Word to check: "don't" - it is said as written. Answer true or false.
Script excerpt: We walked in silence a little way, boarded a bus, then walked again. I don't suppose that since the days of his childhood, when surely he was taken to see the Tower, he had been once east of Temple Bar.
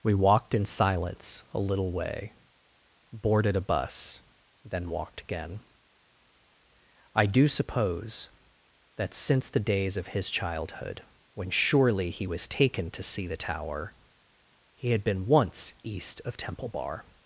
false